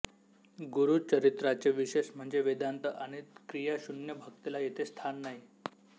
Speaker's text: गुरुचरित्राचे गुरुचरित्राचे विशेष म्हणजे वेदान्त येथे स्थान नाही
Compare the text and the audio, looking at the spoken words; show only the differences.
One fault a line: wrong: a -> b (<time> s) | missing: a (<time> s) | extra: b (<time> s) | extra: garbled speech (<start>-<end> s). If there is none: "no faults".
missing: गुरुचरित्राचे (1.7 s)
extra: आणि क्रियाशून्य भक्तीला (2.9 s)